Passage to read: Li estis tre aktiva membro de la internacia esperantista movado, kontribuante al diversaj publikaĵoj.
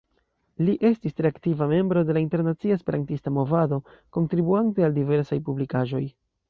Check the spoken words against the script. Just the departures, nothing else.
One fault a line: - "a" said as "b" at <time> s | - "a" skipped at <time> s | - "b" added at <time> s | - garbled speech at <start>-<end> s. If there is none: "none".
none